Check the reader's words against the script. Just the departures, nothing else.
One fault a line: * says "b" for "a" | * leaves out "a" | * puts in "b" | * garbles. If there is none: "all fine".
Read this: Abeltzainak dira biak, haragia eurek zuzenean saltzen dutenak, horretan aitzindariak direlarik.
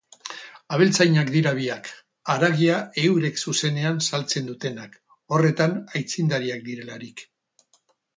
all fine